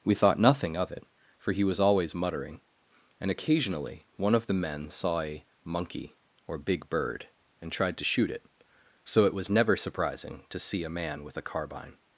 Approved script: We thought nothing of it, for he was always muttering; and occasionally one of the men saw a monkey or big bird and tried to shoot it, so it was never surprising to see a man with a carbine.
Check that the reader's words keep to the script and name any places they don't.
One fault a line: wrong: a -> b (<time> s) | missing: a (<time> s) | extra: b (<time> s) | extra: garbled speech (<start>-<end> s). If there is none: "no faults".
no faults